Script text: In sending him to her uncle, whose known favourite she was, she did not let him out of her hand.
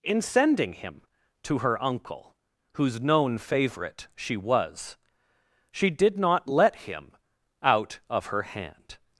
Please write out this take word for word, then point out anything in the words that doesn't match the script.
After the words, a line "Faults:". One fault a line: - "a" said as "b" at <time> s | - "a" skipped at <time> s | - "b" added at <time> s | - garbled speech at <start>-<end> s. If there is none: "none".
In sending him to her uncle, whose known favourite she was, she did not let him out of her hand.
Faults:
none